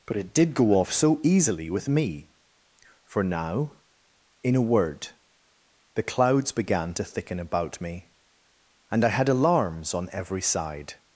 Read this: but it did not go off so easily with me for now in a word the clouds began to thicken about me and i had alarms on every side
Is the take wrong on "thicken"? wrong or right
right